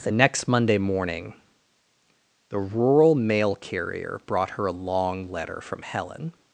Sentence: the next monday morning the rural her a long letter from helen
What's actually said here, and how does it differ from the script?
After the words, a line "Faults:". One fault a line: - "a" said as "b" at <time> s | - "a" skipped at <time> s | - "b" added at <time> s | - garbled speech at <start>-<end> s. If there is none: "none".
the next monday morning the rural mail carrier brought her a long letter from helen
Faults:
- "mail carrier brought" added at 3.2 s